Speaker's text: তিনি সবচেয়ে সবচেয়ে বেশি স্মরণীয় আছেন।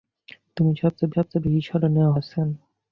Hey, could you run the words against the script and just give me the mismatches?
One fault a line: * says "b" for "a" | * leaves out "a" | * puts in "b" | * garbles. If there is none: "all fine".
all fine